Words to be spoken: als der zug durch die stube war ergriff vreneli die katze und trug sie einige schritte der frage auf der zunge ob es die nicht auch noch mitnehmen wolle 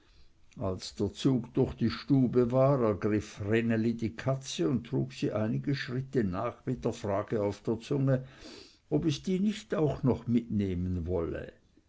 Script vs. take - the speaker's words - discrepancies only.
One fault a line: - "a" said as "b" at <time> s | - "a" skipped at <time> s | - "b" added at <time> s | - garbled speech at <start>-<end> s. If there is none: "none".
- "nach mit" added at 6.2 s